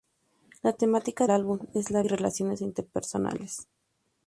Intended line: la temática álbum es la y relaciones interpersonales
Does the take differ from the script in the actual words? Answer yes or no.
no